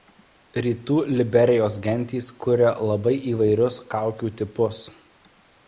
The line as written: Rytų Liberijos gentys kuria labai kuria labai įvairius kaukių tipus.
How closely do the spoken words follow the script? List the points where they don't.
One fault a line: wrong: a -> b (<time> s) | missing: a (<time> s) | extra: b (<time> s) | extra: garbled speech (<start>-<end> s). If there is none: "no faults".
missing: kuria labai (3.1 s)